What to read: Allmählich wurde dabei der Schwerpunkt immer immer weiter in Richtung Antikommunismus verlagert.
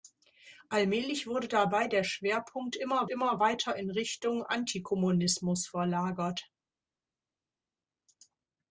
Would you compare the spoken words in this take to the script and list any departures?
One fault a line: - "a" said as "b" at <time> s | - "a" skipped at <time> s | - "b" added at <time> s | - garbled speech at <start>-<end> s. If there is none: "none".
none